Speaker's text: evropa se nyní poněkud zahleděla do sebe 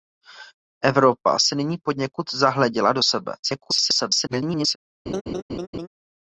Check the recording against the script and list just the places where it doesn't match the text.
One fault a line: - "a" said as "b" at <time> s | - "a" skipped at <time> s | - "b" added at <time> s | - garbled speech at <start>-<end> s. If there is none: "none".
- garbled speech at 3.4-4.8 s